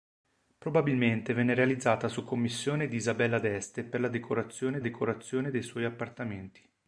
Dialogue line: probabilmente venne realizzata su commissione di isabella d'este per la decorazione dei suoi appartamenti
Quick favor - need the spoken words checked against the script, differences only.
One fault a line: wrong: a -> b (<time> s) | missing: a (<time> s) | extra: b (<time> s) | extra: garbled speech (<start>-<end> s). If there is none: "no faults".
extra: decorazione (4.8 s)